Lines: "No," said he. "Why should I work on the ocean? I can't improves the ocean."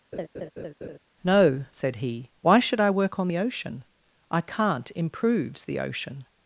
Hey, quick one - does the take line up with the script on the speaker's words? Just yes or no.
yes